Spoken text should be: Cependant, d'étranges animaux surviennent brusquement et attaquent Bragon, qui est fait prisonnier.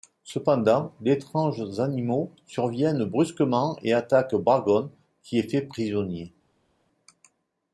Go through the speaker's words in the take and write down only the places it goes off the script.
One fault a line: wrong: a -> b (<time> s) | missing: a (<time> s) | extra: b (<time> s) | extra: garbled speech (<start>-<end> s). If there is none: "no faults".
no faults